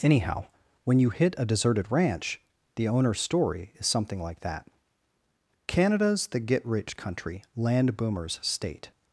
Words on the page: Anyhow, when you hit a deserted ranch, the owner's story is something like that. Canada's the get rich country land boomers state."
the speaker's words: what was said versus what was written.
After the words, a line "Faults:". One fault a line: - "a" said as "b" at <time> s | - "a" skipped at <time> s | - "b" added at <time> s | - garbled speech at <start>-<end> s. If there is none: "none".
Anyhow, when you hit a deserted ranch, the owner's story is something like that. Canada's the get rich country land boomers state."
Faults:
none